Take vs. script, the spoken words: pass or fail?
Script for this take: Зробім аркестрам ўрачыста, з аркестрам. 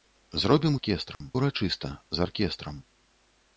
pass